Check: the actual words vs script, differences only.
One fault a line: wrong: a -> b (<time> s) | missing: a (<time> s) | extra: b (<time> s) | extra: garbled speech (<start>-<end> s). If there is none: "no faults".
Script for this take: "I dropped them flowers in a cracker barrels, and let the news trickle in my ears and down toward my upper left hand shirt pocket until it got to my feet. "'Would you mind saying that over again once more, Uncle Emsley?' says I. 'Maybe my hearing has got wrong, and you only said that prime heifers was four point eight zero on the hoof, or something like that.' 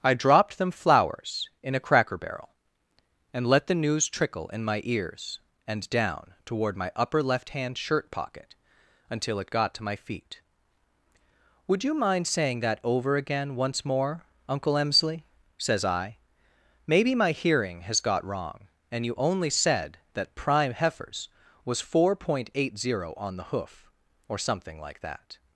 wrong: barrels -> barrel (2.2 s)